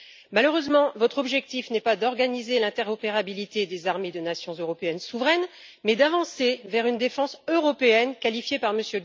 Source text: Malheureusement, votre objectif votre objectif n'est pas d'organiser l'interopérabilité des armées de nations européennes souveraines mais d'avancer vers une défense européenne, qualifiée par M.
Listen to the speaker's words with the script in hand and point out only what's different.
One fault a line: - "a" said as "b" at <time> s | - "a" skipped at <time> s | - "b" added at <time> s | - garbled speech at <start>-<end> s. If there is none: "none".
- "votre objectif" skipped at 1.7 s